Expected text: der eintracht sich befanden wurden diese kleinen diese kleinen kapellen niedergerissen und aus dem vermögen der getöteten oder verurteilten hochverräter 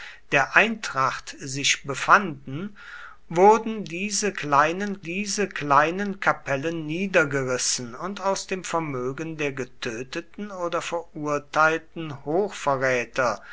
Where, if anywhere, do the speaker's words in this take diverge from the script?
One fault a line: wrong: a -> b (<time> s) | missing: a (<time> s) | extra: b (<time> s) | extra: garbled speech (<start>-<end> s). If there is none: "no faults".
no faults